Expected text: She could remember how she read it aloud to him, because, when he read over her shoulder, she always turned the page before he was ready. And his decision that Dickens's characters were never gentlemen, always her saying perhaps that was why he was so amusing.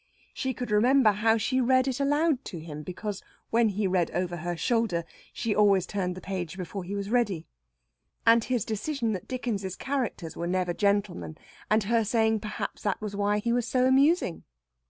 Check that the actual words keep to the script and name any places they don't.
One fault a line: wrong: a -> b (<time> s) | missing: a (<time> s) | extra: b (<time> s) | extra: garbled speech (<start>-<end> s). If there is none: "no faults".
wrong: always -> and (11.7 s)